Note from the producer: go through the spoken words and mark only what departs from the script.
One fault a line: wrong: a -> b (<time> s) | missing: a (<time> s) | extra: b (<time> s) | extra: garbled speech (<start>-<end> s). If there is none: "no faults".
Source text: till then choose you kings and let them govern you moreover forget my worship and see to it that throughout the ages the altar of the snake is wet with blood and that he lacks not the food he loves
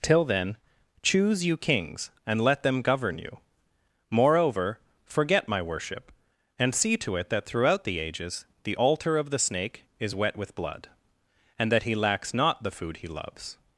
no faults